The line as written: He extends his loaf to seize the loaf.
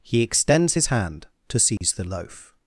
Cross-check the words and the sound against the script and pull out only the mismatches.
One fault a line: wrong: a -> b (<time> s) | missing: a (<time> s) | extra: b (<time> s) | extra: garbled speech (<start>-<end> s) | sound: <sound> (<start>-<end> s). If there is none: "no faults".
wrong: loaf -> hand (0.9 s)
sound: dropout (1.8-1.8 s)